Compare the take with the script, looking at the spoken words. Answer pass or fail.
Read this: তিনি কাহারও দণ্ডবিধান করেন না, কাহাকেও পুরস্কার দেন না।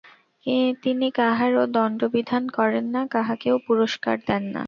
pass